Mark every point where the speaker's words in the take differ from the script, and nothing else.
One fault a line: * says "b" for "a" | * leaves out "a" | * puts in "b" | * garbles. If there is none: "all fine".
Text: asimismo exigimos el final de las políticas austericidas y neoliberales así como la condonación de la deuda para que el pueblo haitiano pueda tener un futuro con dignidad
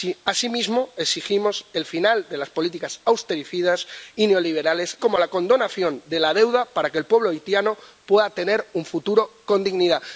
* leaves out "así"